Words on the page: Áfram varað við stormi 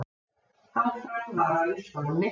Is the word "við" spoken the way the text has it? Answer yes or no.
yes